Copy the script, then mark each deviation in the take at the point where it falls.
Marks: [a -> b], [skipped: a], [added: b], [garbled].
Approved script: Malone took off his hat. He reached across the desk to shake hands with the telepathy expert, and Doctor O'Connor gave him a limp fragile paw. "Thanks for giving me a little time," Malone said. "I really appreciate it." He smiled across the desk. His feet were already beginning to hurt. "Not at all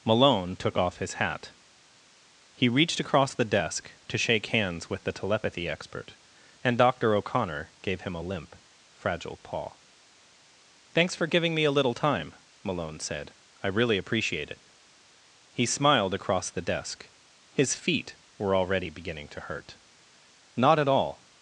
Malone took off his hat. He reached across the desk to shake hands with the telepathy expert, and Doctor O'Connor gave him a limp fragile paw. "Thanks for giving me a little time," Malone said. "I really appreciate it." He smiled across the desk. His feet were already beginning to hurt. "Not at all